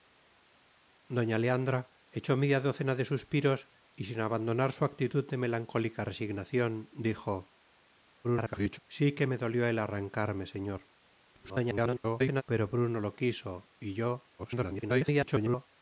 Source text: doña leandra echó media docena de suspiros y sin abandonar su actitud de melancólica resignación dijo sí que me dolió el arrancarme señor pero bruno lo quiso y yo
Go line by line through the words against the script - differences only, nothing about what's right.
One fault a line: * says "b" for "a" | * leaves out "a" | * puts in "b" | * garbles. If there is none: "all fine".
* garbles
* garbles
* garbles